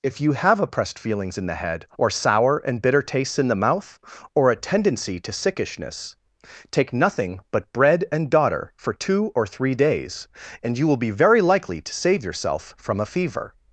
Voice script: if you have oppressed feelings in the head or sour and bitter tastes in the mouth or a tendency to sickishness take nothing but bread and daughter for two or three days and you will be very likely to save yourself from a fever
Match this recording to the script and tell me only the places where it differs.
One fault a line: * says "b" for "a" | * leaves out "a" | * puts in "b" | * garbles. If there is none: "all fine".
all fine